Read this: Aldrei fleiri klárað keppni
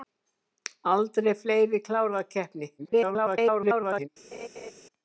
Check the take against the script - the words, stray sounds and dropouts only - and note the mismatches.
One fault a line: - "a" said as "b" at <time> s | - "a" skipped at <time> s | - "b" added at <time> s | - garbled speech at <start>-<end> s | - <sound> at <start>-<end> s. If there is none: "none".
- garbled speech at 2.8-4.1 s
- laugh at 4.3-4.7 s